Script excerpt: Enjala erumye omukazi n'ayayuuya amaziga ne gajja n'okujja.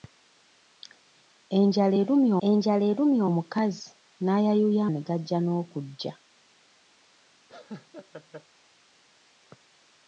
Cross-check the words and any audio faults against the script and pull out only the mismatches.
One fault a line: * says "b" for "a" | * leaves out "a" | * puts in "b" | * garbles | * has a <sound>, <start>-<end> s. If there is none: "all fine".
* puts in "enjala erumye"
* leaves out "amaziga"
* has a laugh, 7.5-8.5 s